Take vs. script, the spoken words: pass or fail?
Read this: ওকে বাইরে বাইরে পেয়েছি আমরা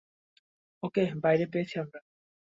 fail